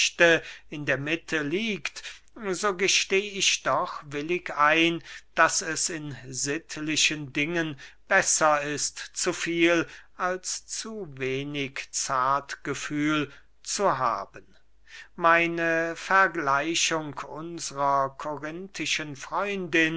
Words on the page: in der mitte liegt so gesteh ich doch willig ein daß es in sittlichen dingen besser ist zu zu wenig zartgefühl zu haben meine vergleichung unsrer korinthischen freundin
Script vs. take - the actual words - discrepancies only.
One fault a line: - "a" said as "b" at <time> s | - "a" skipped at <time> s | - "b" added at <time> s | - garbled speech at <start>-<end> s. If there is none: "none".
- "viel als" added at 9.3 s